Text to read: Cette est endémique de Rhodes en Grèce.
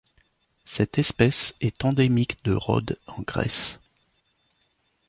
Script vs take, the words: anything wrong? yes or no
yes